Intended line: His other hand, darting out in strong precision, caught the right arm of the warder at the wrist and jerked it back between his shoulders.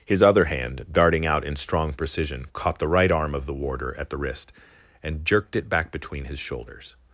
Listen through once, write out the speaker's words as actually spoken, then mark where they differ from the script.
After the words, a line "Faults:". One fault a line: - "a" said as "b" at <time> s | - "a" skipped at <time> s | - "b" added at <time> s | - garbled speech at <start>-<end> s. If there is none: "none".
His other hand, darting out in strong precision, caught the right arm of the warder at the wrist and jerked it back between his shoulders.
Faults:
none